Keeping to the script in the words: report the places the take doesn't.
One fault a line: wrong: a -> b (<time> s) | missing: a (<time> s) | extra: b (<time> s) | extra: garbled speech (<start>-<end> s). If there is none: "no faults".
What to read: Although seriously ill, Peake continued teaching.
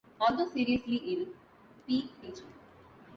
missing: continued (2.2 s)